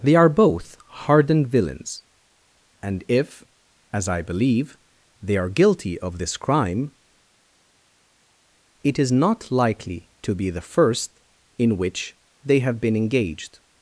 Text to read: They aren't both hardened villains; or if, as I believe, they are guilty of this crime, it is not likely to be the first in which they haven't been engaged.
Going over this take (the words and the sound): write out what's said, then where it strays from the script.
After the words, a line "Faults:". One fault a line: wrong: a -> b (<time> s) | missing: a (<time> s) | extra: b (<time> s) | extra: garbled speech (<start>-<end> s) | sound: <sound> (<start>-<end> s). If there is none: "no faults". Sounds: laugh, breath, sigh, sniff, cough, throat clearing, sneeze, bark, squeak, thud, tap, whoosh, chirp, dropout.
They are both hardened villains; and if, as I believe, they are guilty of this crime, it is not likely to be the first in which they have been engaged.
Faults:
wrong: aren't -> are (0.1 s)
wrong: or -> and (2.8 s)
wrong: haven't -> have (12.6 s)